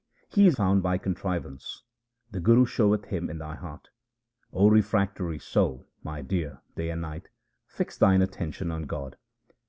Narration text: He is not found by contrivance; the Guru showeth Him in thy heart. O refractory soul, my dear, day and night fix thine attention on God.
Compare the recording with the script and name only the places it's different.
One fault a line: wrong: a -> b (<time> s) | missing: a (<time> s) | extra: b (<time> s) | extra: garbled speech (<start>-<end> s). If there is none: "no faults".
missing: not (0.6 s)